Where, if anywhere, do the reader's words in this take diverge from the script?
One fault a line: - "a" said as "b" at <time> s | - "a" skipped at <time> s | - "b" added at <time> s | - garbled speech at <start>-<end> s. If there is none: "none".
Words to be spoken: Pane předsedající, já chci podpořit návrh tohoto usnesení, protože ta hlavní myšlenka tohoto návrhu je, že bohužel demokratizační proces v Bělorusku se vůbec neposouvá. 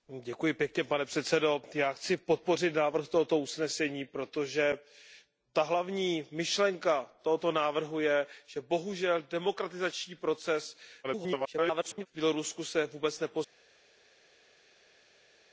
- garbled speech at 11.0-12.1 s